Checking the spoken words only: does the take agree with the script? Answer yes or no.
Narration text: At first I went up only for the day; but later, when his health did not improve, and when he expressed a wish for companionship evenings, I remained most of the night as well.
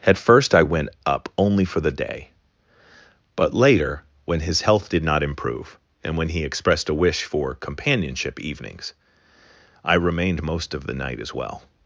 yes